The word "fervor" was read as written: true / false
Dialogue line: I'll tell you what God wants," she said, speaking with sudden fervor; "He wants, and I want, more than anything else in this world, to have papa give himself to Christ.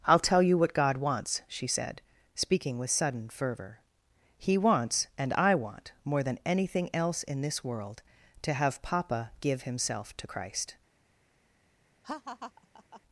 true